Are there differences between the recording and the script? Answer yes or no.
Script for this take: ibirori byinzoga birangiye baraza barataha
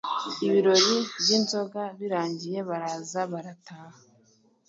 no